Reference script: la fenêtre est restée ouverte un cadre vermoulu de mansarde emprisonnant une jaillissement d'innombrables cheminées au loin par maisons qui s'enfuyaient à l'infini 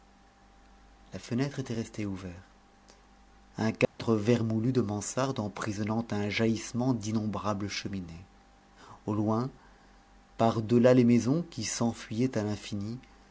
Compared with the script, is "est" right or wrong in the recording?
wrong